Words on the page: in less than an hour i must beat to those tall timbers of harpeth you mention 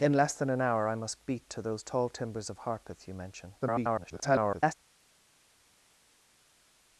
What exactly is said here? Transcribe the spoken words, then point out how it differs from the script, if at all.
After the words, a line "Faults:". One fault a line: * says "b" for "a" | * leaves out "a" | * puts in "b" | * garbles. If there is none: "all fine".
in less than an hour i must beat to those tall timbers of harpeth you mention [garbled]
Faults:
* garbles